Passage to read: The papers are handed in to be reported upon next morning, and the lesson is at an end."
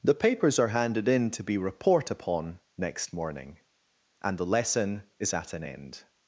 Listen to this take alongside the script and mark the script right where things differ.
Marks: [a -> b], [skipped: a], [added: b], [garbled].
The papers are handed in to be [reported -> report] upon next morning, and the lesson is at an end."